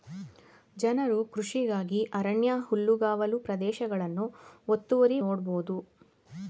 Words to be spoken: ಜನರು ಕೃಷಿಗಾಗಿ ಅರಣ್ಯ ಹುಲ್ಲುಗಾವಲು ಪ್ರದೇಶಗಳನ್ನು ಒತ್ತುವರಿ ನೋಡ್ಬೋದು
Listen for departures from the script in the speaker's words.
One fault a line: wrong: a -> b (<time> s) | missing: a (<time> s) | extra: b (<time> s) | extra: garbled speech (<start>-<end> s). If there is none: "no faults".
no faults